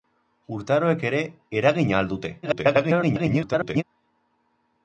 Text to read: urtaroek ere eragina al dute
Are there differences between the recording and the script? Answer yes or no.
yes